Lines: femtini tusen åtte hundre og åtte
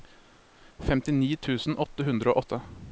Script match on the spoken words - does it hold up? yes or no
yes